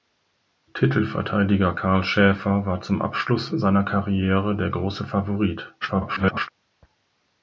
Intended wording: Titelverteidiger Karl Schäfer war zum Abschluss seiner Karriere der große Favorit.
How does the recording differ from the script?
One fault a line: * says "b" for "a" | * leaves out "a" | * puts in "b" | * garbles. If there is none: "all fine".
* garbles